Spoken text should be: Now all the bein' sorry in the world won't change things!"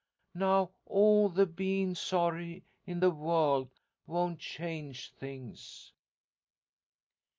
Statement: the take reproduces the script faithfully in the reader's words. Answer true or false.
true